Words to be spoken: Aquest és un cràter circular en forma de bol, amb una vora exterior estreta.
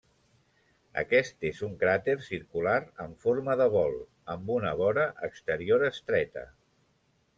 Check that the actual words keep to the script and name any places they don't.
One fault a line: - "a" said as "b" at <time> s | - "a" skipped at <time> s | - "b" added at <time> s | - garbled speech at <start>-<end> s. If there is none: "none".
none